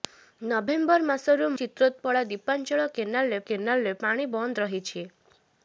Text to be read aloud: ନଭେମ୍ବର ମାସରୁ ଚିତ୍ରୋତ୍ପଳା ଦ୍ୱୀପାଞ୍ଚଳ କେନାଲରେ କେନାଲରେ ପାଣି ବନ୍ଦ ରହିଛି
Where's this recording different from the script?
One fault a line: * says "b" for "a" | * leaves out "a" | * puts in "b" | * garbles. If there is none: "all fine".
all fine